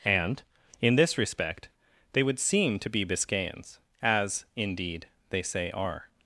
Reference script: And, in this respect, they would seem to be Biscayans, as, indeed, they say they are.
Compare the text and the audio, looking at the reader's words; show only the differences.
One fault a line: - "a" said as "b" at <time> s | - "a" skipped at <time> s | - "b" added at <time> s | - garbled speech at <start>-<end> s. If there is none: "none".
- "they" skipped at 5.7 s